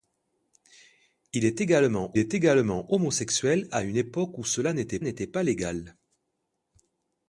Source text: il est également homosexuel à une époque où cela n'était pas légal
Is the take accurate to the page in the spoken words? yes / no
no